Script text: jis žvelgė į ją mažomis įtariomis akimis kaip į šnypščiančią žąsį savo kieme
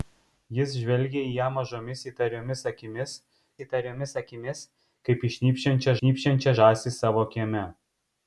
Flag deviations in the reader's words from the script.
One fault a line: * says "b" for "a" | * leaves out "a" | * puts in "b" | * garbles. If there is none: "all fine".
* puts in "įtariomis akimis"
* puts in "šnypščiančią"